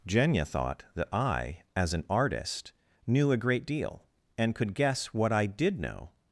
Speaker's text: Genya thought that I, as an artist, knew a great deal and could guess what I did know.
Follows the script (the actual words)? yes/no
yes